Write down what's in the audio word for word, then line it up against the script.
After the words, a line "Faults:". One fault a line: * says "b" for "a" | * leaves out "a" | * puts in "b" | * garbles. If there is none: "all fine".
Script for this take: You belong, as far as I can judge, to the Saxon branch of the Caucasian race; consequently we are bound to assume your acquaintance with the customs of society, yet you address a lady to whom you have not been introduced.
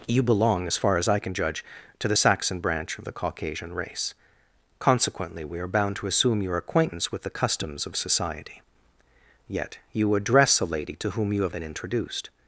You belong, as far as I can judge, to the Saxon branch of the Caucasian race; consequently we are bound to assume your acquaintance with the customs of society, yet you address a lady to whom you have been introduced.
Faults:
* leaves out "not"